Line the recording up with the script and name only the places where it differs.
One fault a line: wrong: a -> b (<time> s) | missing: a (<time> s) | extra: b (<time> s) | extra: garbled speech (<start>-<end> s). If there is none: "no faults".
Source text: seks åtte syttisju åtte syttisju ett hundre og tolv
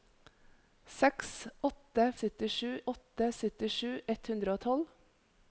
no faults